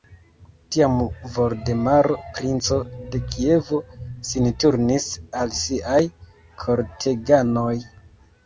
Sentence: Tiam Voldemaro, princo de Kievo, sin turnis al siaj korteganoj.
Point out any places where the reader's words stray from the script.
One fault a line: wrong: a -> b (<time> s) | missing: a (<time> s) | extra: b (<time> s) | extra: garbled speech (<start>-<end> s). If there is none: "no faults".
no faults